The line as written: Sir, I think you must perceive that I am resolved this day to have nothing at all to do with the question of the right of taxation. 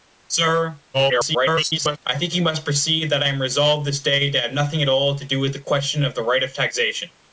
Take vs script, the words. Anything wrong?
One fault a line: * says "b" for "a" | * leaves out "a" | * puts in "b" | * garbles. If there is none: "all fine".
* garbles